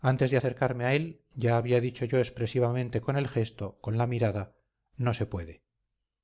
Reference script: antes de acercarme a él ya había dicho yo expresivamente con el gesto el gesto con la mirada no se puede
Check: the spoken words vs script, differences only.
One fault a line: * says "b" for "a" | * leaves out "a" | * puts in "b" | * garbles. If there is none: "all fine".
* leaves out "el gesto"